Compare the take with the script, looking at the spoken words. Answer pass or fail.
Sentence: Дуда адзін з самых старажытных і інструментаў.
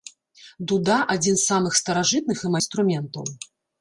pass